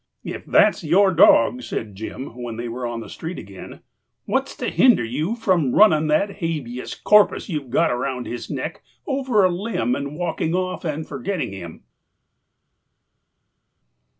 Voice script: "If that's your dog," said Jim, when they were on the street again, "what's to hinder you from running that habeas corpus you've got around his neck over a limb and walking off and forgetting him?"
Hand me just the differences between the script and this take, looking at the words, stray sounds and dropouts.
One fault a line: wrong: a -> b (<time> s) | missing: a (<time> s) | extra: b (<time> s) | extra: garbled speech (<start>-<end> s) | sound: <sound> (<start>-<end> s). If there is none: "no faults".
no faults